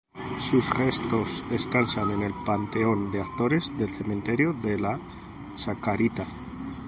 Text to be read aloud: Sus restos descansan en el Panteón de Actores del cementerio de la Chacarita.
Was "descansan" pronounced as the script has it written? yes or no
yes